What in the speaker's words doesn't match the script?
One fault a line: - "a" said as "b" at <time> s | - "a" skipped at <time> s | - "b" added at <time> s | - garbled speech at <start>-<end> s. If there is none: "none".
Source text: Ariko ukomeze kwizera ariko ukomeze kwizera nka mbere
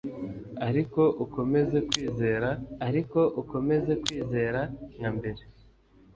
none